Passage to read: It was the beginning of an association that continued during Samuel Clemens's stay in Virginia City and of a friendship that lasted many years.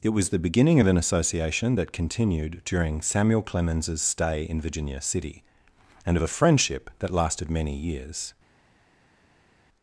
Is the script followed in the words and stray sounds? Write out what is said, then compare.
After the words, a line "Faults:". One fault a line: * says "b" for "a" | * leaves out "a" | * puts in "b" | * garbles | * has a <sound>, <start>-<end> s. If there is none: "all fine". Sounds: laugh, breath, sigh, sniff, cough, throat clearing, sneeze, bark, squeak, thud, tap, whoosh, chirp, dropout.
It was the beginning of an association that continued during Samuel Clemens's stay in Virginia City and of a friendship that lasted many years.
Faults:
all fine